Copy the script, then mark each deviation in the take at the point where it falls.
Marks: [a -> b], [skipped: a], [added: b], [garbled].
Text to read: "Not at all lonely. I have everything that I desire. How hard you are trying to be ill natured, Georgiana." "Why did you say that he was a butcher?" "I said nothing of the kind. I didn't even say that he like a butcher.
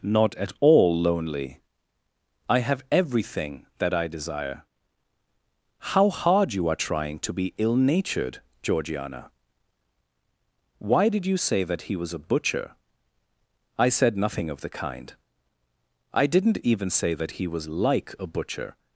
"Not at all lonely. I have everything that I desire. How hard you are trying to be ill natured, Georgiana." "Why did you say that he was a butcher?" "I said nothing of the kind. I didn't even say that he [added: was] like a butcher.